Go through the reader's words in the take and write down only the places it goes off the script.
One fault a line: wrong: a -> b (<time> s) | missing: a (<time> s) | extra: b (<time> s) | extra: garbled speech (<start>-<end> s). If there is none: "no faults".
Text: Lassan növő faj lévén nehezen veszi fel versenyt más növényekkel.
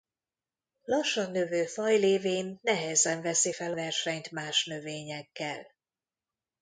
no faults